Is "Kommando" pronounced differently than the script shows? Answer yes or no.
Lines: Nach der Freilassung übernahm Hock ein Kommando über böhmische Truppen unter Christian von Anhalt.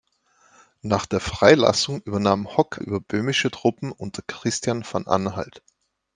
yes